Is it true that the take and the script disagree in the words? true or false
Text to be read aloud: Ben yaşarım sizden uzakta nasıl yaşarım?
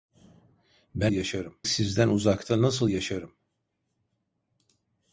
false